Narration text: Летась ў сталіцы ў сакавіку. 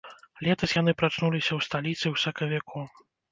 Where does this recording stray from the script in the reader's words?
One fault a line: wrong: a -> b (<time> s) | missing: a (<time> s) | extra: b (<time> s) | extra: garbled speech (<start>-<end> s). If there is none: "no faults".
extra: яны прачнуліся (0.8 s)